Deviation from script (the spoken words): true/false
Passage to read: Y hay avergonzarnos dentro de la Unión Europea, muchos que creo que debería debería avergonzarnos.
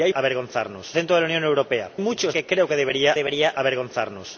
false